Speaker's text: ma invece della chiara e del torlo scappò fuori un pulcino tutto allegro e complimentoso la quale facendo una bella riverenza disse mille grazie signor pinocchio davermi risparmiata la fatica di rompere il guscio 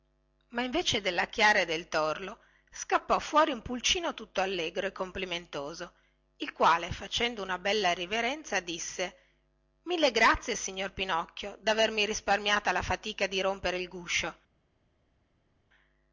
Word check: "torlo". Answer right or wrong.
right